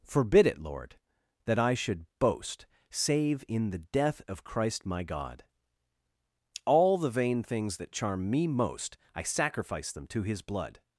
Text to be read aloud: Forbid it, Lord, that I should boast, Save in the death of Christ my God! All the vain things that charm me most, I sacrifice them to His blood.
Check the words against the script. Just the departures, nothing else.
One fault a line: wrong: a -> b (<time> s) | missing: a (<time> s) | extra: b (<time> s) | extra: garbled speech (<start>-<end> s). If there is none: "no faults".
no faults